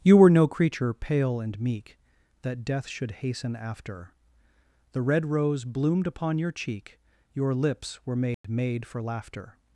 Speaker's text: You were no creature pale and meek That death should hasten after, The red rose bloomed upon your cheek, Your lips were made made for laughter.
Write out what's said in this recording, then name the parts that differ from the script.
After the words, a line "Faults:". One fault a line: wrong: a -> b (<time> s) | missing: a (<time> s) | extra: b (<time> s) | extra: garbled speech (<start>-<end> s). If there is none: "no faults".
You were no creature pale and meek That death should hasten after, The red rose bloomed upon your cheek, Your lips were made made for laughter.
Faults:
no faults